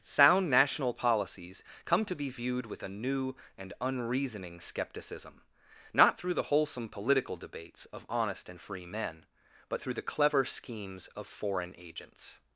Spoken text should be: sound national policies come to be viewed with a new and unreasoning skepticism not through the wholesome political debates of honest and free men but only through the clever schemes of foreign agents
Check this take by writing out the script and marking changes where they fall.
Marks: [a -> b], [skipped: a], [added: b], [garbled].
sound national policies come to be viewed with a new and unreasoning skepticism not through the wholesome political debates of honest and free men but [skipped: only] through the clever schemes of foreign agents